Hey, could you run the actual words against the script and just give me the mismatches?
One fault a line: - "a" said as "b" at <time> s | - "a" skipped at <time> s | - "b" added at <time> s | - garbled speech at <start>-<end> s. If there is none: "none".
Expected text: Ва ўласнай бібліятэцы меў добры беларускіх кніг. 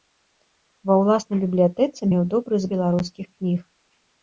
none